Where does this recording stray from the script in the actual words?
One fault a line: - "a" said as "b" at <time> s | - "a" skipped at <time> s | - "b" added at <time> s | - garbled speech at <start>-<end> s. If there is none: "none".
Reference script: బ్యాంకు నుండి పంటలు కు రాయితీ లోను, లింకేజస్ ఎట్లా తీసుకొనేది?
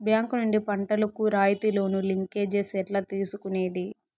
none